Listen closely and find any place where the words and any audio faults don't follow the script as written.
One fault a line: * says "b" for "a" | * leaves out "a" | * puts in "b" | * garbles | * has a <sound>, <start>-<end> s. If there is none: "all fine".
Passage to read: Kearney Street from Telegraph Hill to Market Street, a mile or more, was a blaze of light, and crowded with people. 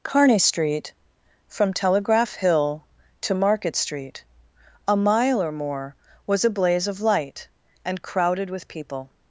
all fine